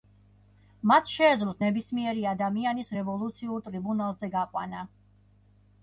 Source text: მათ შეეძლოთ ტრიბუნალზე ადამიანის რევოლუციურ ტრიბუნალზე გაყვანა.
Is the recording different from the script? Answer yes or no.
yes